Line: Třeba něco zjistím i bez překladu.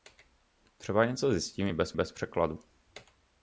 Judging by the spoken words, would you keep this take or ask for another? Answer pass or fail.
fail